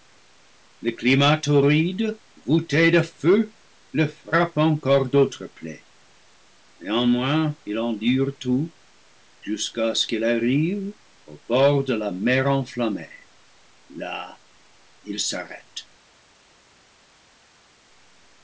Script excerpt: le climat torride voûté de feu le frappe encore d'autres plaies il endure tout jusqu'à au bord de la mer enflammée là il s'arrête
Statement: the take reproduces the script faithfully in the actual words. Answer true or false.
false